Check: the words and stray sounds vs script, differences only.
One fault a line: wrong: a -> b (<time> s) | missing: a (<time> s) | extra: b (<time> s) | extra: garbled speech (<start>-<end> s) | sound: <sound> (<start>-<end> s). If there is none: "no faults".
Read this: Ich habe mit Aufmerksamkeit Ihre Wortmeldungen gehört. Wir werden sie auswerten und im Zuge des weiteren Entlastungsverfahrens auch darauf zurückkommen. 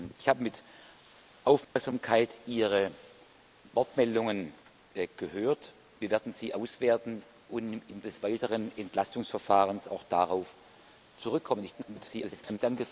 sound: dropout (1.6-1.8 s)
missing: Zuge (8.1 s)
extra: garbled speech (11.7-12.6 s)